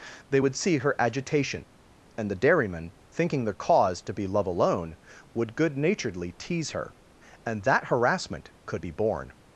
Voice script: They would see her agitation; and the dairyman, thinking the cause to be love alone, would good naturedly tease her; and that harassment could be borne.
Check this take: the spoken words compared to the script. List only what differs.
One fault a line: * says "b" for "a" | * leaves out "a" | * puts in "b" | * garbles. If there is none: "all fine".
all fine